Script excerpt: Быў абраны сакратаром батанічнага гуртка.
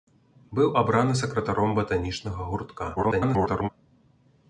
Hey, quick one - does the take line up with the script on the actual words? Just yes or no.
no